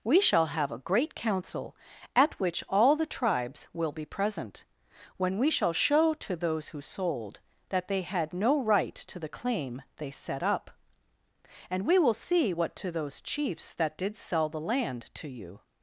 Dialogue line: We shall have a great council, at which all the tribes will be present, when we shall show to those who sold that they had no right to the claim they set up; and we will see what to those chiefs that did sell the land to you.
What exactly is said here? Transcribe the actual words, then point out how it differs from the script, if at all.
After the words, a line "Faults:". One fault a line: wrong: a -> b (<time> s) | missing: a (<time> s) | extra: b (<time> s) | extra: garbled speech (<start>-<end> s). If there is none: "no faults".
We shall have a great council, at which all the tribes will be present, when we shall show to those who sold that they had no right to the claim they set up; and we will see what to those chiefs that did sell the land to you.
Faults:
no faults